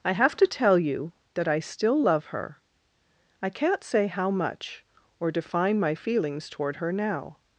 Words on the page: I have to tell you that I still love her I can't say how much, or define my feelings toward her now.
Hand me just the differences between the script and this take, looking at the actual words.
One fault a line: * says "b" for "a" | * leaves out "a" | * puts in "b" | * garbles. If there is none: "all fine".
all fine